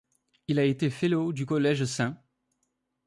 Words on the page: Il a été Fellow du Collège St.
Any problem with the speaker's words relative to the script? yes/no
no